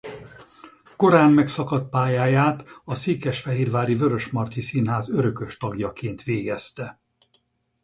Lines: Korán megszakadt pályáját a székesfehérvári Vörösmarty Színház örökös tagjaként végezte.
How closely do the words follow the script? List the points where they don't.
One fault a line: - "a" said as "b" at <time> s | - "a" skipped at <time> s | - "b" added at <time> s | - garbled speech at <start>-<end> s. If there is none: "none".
none